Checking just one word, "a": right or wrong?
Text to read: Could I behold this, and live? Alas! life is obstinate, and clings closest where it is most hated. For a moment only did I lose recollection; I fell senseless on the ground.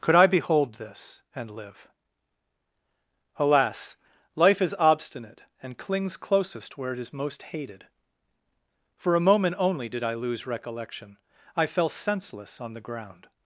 right